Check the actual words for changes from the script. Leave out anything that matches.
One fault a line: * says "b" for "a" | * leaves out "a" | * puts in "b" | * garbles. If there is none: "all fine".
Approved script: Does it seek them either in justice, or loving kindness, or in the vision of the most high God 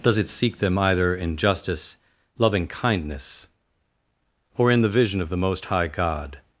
* leaves out "or"